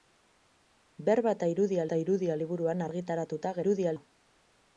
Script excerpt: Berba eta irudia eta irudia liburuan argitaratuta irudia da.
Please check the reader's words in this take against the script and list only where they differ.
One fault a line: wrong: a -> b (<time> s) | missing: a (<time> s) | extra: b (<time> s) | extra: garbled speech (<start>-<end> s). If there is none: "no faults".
no faults